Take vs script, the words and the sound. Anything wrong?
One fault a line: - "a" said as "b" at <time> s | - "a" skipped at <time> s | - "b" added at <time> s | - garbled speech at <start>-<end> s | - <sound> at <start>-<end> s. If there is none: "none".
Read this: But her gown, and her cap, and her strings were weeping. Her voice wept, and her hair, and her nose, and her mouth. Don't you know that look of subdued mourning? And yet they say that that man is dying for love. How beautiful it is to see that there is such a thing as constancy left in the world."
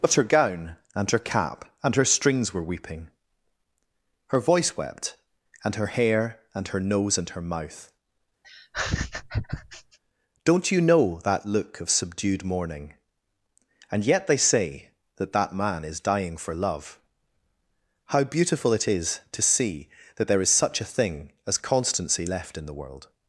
- laugh at 8.4-10.0 s